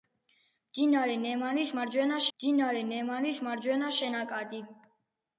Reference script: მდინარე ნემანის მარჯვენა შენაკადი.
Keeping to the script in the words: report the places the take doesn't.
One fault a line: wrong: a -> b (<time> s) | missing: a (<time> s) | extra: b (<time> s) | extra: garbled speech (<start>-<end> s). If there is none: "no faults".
extra: მდინარე ნემანის მარჯვენა (2.3 s)